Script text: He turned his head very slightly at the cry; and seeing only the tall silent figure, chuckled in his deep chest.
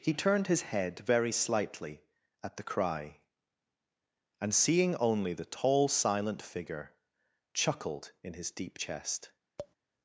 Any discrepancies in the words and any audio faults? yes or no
yes